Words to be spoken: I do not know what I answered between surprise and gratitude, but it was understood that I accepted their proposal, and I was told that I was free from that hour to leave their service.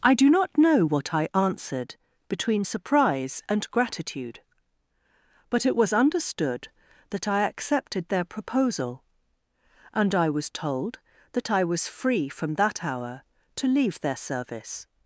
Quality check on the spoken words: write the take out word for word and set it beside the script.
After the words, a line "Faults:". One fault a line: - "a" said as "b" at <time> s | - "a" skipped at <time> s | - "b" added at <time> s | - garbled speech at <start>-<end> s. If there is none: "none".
I do not know what I answered between surprise and gratitude, but it was understood that I accepted their proposal, and I was told that I was free from that hour to leave their service.
Faults:
none